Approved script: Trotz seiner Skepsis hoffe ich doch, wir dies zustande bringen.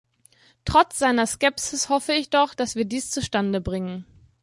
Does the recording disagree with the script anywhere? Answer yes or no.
yes